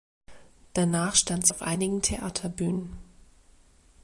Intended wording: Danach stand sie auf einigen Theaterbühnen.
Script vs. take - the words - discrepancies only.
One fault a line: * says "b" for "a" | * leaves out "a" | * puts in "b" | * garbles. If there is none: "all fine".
* leaves out "sie"